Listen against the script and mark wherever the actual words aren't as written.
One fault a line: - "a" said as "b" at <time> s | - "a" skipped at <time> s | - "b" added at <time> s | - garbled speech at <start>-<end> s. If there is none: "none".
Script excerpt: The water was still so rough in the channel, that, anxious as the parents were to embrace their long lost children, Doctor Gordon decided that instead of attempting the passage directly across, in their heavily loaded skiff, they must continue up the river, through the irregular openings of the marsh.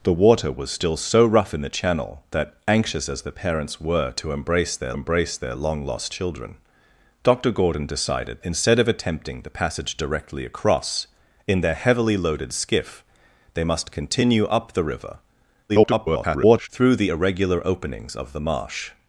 - "embrace their" added at 4.9 s
- "that" skipped at 8.4 s
- garbled speech at 15.7-16.7 s